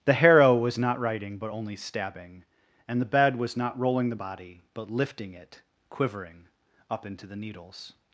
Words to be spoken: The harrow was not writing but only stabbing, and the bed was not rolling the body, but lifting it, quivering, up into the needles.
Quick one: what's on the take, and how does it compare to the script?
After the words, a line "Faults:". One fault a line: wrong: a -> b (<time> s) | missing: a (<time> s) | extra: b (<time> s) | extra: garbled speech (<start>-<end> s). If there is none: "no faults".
The harrow was not writing but only stabbing, and the bed was not rolling the body, but lifting it, quivering, up into the needles.
Faults:
no faults